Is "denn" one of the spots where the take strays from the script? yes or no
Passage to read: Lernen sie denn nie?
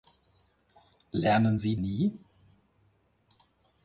yes